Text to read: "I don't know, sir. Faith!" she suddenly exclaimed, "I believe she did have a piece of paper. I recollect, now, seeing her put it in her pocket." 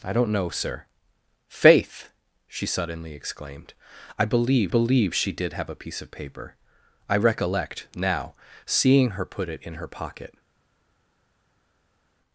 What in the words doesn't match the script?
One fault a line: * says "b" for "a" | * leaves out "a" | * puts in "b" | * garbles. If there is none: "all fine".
* puts in "believe"